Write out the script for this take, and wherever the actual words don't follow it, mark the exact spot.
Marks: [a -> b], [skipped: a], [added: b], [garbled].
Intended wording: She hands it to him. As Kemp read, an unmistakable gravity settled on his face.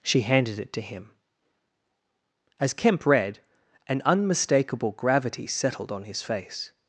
She [hands -> handed] it to him. As Kemp read, an unmistakable gravity settled on his face.